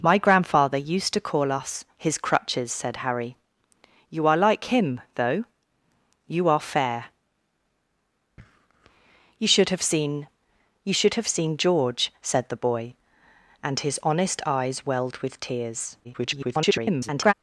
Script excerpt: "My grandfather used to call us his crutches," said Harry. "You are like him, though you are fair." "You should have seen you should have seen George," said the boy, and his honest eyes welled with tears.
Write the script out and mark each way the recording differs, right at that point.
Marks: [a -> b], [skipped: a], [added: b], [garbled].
"My grandfather used to call us his crutches," said Harry. "You are like him, though you are fair." "You should have seen you should have seen George," said the boy, and his honest eyes welled with tears. [garbled]